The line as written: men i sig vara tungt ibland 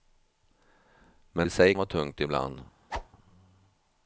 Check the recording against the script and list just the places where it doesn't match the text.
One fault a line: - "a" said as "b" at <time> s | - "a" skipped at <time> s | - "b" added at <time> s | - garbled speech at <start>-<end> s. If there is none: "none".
none